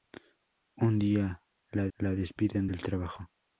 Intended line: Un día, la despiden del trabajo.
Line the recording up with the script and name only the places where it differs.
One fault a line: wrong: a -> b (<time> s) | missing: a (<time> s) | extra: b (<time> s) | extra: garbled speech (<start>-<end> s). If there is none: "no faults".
extra: la (2.0 s)